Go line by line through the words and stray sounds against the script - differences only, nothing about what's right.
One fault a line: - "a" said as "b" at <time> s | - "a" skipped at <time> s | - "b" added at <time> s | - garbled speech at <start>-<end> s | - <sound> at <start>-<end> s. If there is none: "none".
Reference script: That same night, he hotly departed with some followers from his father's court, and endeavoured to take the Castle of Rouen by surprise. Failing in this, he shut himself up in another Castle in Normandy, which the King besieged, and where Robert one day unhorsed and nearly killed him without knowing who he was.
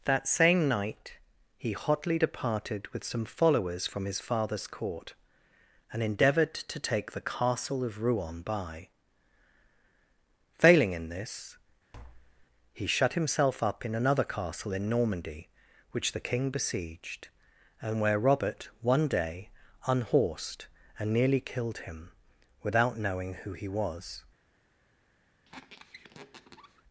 - "surprise" skipped at 8.9 s
- tap at 11.9-12.5 s
- squeak at 25.4-26.8 s